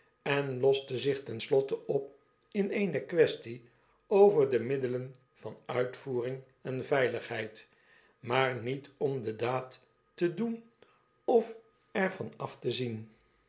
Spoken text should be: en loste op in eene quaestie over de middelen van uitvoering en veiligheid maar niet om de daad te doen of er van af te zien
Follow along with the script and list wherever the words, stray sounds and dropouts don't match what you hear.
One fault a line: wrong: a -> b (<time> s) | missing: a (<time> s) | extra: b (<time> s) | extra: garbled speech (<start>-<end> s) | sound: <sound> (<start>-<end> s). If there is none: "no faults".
extra: zich ten slotte (1.0 s)